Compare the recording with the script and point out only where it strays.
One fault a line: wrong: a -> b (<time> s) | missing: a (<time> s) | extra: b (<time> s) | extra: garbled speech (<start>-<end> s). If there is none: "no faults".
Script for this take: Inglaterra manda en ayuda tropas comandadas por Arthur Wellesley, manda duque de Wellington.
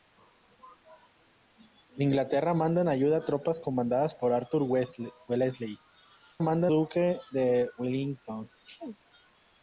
no faults